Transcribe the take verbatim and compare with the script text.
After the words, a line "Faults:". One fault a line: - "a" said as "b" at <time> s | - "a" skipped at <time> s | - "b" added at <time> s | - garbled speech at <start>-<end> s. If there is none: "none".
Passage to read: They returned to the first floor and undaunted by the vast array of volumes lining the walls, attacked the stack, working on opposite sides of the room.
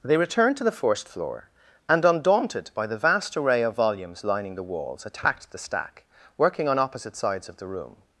They returned to the first floor and undaunted by the vast array of volumes lining the walls, attacked the stack, working on opposite sides of the room.
Faults:
none